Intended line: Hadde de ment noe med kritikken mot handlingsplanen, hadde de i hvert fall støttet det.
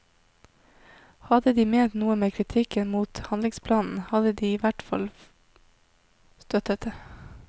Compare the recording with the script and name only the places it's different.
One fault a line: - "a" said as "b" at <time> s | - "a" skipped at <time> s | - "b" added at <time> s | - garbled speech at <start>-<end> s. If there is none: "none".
none